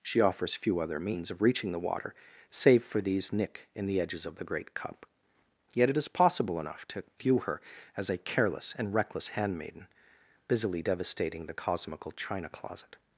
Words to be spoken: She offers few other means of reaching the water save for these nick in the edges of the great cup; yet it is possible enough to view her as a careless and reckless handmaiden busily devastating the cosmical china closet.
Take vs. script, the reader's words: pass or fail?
pass